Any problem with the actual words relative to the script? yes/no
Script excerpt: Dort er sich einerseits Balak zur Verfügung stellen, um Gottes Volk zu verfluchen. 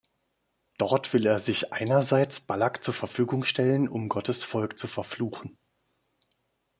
yes